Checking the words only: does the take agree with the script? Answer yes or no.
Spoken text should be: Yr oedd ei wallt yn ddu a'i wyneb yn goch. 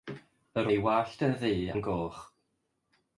no